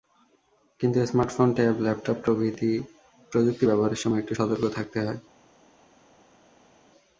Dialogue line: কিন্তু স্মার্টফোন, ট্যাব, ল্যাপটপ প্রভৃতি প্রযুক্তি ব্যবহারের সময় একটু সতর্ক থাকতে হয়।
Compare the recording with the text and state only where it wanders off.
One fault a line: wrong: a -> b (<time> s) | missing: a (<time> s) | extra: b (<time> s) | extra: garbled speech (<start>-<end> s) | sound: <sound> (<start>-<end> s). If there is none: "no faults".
no faults